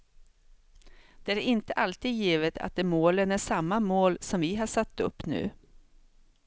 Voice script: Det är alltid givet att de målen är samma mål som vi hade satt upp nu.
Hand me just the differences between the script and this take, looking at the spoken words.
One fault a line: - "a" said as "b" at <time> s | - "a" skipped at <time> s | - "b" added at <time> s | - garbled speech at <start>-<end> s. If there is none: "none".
- "inte" added at 1.4 s
- "hade" said as "har" at 4.5 s